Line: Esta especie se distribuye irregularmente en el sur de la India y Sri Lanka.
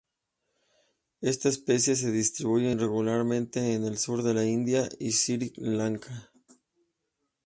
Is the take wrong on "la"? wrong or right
right